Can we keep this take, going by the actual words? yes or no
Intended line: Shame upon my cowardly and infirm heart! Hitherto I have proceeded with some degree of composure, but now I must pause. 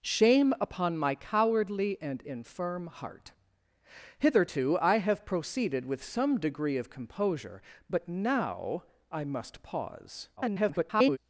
no